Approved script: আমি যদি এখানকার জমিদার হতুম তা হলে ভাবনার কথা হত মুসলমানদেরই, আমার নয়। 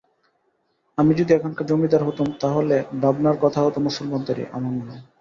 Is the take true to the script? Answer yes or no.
yes